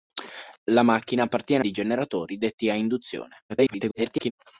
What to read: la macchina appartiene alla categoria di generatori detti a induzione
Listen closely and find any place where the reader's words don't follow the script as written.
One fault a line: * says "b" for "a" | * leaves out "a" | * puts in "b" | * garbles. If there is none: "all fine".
* leaves out "alla categoria"
* garbles